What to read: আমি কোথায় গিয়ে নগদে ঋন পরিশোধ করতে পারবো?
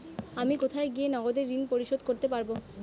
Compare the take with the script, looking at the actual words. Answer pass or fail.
pass